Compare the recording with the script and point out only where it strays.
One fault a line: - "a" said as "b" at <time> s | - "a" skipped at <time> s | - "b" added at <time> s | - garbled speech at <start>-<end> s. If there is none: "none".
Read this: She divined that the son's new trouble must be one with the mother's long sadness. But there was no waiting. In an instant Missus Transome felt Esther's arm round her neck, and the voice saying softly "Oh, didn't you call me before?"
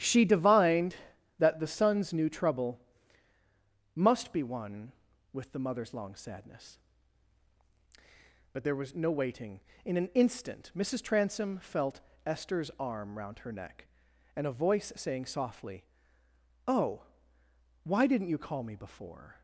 - "the" said as "a" at 14.5 s
- "why" added at 17.8 s